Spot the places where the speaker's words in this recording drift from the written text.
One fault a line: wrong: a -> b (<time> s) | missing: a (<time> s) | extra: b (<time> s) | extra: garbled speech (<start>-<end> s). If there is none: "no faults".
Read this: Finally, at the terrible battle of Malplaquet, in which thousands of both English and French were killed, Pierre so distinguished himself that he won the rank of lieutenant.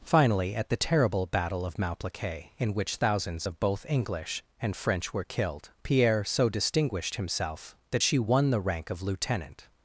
wrong: he -> she (8.0 s)